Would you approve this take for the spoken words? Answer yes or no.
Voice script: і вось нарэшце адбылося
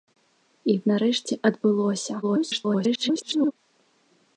no